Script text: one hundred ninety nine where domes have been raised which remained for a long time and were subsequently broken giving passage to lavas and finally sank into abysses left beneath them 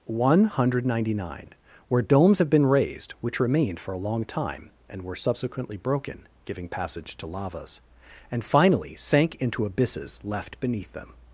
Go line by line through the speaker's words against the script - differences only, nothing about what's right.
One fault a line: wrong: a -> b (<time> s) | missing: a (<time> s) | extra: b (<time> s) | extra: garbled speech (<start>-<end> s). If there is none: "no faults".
no faults